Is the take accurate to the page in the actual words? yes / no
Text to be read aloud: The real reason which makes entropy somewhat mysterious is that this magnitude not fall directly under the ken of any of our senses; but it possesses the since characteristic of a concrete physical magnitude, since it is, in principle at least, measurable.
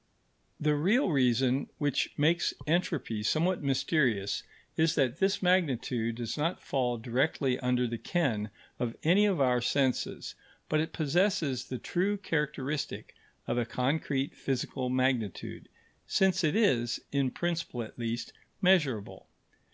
no